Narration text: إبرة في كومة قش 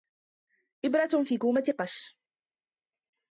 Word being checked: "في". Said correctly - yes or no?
yes